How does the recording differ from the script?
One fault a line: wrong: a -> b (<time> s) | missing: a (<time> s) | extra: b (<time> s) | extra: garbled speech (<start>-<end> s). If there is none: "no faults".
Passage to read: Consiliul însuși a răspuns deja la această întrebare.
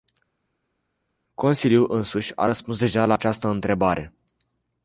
no faults